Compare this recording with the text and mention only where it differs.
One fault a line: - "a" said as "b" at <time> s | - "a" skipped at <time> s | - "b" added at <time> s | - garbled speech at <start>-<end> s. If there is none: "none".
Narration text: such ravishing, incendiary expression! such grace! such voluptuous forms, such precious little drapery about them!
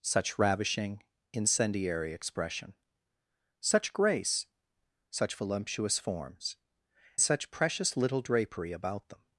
none